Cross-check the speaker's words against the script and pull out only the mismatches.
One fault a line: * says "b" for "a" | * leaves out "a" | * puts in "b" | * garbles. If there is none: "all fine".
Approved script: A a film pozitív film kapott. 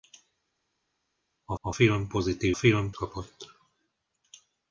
all fine